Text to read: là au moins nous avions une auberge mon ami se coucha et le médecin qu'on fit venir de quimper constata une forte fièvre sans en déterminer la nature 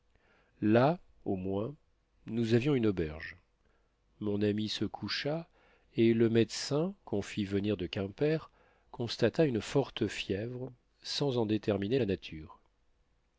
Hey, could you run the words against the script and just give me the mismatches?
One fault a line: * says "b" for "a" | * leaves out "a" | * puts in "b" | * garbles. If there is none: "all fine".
all fine